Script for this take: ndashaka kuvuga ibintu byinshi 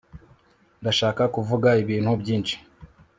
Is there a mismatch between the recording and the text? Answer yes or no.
no